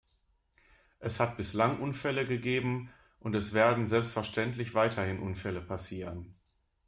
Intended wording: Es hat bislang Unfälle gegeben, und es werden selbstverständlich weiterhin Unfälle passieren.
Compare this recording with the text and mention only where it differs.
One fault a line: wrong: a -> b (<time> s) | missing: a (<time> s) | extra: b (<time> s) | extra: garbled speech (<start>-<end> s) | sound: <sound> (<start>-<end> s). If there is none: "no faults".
no faults